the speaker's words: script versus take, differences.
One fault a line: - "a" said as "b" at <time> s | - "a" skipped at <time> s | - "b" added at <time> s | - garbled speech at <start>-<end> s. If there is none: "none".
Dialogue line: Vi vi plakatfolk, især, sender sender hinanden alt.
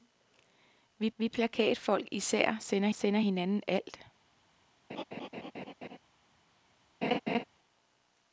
none